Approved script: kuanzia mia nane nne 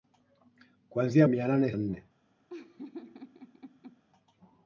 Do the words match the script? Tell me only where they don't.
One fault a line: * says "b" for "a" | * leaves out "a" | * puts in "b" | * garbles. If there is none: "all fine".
all fine